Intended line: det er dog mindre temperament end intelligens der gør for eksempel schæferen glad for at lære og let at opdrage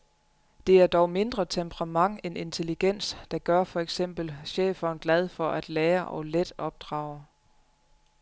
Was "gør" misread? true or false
false